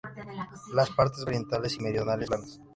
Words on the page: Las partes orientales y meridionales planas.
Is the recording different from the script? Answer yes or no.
no